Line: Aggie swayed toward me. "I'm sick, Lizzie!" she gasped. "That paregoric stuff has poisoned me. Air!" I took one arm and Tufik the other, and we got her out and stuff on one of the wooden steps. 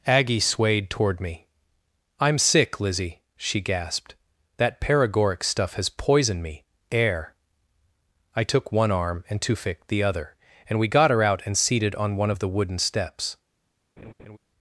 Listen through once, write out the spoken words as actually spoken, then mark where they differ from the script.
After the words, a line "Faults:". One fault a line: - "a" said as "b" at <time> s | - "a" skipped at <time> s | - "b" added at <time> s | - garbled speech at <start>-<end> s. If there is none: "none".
Aggie swayed toward me. "I'm sick, Lizzie!" she gasped. "That paregoric stuff has poisoned me. Air!" I took one arm and Tufik the other, and we got her out and seated on one of the wooden steps.
Faults:
- "stuff" said as "seated" at 11.6 s